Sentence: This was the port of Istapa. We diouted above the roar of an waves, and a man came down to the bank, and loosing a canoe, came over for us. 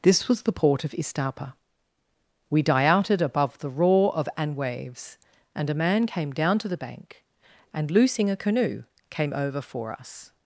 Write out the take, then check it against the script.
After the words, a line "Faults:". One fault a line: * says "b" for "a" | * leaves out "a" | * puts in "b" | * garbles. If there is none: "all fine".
This was the port of Istapa. We diouted above the roar of an waves, and a man came down to the bank, and loosing a canoe, came over for us.
Faults:
all fine